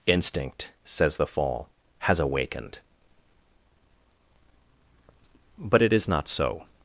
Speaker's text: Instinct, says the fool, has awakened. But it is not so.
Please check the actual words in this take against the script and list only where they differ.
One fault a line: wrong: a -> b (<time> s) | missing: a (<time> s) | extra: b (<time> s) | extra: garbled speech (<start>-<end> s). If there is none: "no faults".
wrong: fool -> fall (1.3 s)